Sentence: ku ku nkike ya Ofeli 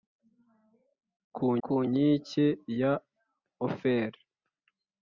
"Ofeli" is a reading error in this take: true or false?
false